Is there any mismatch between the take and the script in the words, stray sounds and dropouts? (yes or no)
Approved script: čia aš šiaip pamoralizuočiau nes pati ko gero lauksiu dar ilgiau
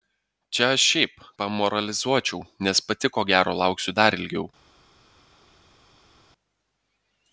no